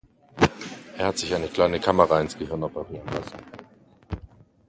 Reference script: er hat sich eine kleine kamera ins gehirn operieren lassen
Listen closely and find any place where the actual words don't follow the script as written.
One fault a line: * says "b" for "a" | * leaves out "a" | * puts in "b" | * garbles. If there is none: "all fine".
all fine